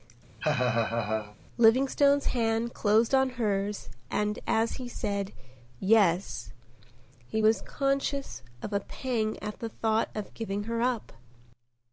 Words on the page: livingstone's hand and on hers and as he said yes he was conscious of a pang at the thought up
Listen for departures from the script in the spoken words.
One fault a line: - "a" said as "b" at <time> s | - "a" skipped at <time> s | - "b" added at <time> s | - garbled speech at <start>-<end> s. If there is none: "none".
- "and" said as "closed" at 2.7 s
- "of giving her" added at 10.1 s